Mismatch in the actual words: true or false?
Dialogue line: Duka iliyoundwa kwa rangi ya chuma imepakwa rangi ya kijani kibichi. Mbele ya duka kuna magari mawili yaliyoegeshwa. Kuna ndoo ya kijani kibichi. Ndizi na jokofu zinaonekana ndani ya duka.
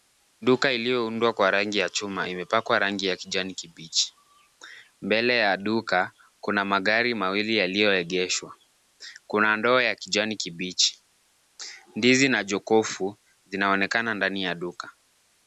false